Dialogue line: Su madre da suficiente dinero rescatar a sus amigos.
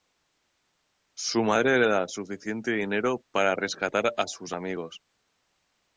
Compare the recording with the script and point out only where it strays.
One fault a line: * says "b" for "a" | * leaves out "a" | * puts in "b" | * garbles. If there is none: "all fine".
* puts in "le"
* puts in "para"